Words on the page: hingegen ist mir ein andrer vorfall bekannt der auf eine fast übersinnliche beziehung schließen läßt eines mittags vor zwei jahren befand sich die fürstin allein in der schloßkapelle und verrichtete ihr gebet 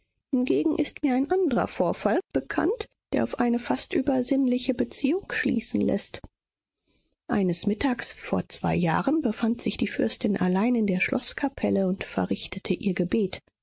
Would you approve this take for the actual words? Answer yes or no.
yes